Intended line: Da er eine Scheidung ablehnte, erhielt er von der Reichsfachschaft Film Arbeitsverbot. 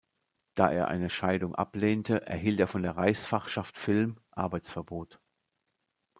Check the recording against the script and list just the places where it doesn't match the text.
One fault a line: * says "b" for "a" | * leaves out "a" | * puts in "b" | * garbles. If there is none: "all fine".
all fine